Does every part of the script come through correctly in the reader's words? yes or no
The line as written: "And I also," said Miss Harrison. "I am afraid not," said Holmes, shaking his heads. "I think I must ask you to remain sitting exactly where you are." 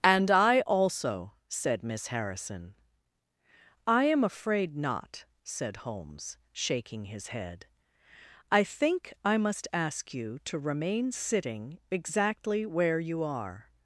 no